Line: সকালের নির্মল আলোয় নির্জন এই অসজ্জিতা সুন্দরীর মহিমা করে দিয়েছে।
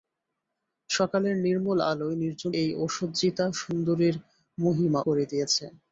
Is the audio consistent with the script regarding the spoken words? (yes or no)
yes